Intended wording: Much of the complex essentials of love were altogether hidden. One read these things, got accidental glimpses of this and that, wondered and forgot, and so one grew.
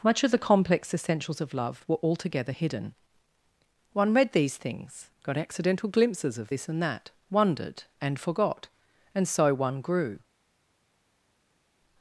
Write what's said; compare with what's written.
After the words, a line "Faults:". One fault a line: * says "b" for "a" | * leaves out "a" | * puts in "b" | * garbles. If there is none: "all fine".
Much of the complex essentials of love were altogether hidden. One read these things, got accidental glimpses of this and that, wondered and forgot, and so one grew.
Faults:
all fine